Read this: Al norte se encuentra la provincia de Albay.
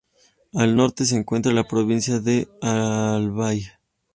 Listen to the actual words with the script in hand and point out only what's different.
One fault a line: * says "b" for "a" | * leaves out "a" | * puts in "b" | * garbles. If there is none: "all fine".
all fine